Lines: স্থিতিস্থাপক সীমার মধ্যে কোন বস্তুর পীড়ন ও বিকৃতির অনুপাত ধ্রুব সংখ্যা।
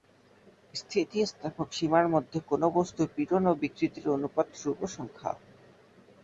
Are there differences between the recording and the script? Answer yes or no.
no